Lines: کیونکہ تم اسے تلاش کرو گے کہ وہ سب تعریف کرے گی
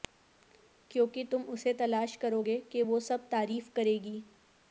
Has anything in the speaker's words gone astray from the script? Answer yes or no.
no